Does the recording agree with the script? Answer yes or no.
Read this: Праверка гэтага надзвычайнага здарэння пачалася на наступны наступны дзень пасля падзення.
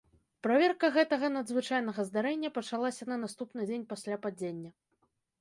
no